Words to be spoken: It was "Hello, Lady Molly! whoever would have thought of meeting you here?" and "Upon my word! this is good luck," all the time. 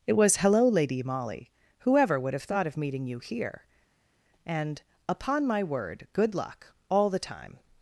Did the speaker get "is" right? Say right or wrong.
wrong